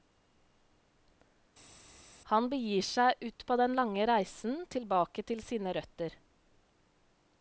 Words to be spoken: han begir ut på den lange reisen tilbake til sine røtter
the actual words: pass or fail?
fail